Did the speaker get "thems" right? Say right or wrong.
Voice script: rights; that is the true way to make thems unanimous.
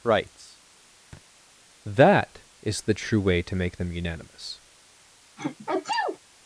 wrong